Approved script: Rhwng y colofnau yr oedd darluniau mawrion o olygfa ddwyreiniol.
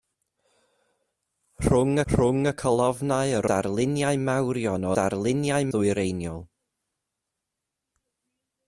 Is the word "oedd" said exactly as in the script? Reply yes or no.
no